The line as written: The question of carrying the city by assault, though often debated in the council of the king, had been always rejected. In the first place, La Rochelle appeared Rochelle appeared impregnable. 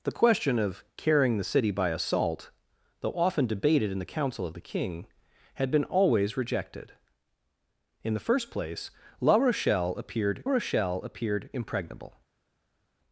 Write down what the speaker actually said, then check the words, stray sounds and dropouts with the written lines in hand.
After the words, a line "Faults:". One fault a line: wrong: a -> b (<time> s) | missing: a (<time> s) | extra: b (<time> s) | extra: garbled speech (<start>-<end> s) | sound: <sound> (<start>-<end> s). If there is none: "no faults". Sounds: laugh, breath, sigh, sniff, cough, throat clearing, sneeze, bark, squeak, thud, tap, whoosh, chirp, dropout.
The question of carrying the city by assault, though often debated in the council of the king, had been always rejected. In the first place, La Rochelle appeared Rochelle appeared impregnable.
Faults:
no faults